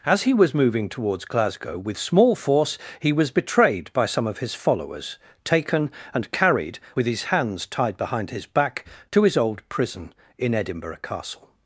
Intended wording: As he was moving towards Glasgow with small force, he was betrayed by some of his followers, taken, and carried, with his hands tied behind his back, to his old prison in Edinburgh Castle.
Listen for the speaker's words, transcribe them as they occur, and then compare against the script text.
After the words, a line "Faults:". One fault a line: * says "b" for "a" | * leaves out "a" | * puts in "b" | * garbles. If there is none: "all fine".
As he was moving towards Glasgow with small force, he was betrayed by some of his followers, taken, and carried, with his hands tied behind his back, to his old prison in Edinburgh Castle.
Faults:
all fine